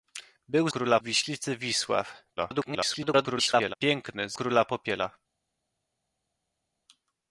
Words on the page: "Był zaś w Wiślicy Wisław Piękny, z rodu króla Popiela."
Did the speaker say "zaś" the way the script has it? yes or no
no